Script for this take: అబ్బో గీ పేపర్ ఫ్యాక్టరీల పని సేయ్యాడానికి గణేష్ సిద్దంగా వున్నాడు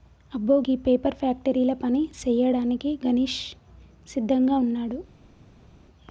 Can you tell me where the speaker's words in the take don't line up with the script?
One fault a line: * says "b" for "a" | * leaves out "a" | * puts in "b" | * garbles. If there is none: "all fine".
all fine